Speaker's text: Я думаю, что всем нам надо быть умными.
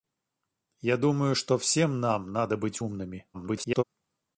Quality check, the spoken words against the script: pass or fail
fail